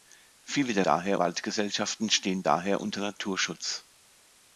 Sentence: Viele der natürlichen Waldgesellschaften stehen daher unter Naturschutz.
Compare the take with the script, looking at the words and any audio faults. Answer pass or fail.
fail